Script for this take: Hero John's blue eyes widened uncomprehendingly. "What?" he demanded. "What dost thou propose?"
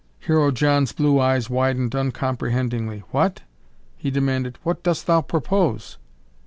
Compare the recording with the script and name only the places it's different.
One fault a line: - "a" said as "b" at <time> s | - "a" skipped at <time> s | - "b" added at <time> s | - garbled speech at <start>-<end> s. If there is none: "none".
none